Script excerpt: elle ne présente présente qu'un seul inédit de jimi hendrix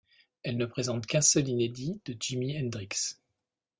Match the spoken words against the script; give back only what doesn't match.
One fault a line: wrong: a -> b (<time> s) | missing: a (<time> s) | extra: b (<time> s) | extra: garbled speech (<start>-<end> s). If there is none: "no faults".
missing: présente (1.1 s)